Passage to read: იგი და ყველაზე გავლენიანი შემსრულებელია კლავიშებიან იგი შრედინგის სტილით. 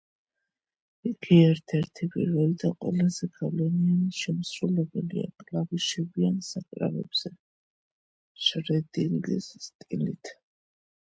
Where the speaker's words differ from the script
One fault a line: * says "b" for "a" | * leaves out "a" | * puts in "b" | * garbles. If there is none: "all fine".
* puts in "ერთ ერთი პირველი"
* says "საკრავებზე" for "იგი"